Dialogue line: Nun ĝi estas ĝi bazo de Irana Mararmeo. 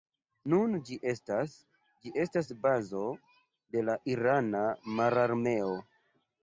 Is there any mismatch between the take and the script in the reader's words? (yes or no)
yes